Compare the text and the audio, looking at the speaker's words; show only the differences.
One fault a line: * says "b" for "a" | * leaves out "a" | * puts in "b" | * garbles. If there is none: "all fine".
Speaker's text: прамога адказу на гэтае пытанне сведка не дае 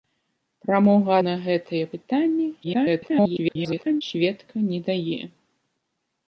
* leaves out "адказу"
* garbles